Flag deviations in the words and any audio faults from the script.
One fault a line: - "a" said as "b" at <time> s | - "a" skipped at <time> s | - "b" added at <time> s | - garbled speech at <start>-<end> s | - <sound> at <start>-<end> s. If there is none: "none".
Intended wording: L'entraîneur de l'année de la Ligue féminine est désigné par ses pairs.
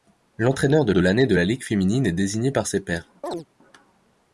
- "de" added at 0.9 s
- chirp at 3.2-3.5 s